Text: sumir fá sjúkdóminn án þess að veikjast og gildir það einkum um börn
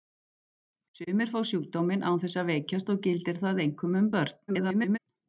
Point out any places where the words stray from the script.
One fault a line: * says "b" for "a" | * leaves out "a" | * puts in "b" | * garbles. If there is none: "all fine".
* garbles